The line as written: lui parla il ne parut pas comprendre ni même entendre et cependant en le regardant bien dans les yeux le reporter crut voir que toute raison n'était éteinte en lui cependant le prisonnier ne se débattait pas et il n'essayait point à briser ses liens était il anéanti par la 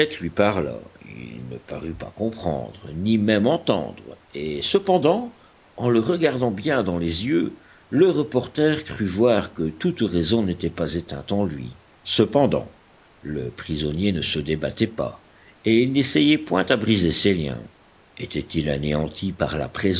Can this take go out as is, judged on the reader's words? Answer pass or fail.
fail